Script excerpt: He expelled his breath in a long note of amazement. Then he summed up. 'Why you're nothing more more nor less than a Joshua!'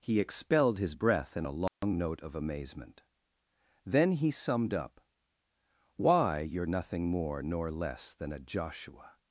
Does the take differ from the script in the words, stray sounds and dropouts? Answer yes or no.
yes